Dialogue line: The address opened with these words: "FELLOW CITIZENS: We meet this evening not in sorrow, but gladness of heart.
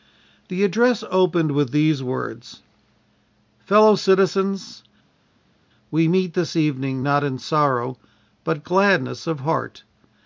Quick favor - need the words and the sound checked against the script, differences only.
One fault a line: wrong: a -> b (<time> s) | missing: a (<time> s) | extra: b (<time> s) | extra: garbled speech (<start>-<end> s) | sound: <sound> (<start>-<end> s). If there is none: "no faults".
no faults